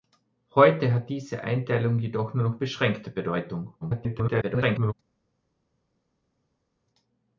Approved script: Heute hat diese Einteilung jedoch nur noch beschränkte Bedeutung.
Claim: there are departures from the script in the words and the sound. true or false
true